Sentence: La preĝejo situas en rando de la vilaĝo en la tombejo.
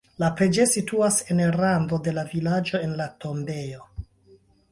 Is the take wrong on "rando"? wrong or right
right